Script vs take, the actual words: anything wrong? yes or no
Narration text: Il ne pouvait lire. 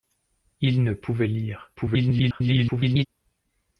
yes